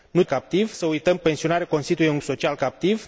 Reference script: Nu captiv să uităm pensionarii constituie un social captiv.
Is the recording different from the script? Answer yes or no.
no